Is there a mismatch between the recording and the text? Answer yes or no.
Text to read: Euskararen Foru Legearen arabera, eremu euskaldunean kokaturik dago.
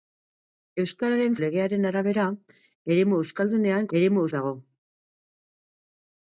yes